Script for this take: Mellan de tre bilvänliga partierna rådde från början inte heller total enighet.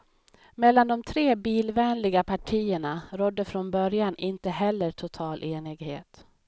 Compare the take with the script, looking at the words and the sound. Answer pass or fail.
pass